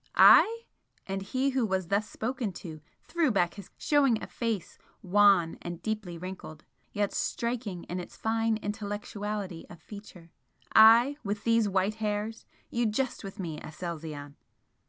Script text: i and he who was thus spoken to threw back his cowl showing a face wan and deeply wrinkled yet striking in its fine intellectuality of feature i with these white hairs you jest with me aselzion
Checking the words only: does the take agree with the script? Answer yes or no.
no